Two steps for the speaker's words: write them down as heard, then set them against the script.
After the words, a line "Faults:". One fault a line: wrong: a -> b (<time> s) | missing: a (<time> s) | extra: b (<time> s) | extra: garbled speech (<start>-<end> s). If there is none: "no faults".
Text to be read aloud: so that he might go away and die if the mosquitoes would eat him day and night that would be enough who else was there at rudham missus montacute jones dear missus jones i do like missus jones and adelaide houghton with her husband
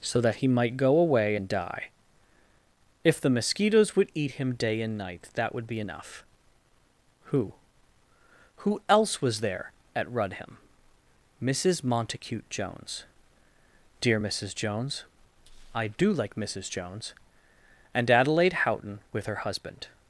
so that he might go away and die if the mosquitoes would eat him day and night that would be enough who who else was there at rudham missus montacute jones dear missus jones i do like missus jones and adelaide houghton with her husband
Faults:
extra: who (8.6 s)